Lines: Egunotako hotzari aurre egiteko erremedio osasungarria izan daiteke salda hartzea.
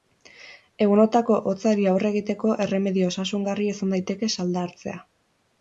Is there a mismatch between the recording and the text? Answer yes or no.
no